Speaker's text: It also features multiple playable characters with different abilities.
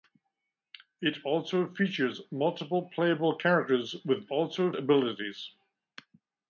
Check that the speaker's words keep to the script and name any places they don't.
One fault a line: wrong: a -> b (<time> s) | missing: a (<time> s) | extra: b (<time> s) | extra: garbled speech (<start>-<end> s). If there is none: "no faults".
wrong: different -> also (4.3 s)